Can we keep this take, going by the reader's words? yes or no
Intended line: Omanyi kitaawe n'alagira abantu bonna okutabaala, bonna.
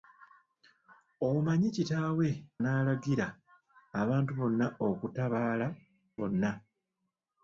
yes